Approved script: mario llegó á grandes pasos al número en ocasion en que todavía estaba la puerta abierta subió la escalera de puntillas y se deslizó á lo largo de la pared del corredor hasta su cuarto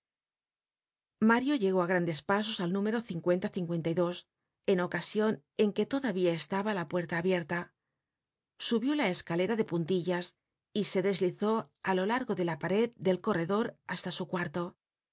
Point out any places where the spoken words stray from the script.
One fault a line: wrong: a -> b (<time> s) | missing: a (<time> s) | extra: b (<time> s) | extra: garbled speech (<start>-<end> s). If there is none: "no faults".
no faults